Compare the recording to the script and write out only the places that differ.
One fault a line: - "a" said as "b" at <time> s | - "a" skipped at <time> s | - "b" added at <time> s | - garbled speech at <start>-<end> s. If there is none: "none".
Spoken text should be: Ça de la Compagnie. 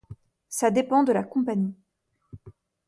- "dépend" added at 0.7 s